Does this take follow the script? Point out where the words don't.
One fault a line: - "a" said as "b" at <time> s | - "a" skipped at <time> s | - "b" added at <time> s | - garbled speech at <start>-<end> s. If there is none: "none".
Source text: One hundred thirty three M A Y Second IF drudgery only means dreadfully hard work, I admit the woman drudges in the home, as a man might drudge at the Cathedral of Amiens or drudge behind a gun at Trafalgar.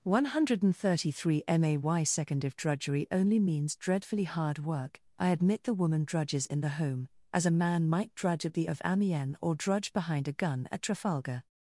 - "Cathedral" skipped at 8.7 s